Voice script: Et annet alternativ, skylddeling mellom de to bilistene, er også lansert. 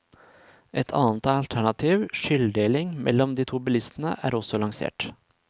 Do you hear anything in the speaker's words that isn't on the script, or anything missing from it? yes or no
no